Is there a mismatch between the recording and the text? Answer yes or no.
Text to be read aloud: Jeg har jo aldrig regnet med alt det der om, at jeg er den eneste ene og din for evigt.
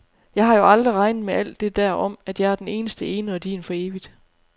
no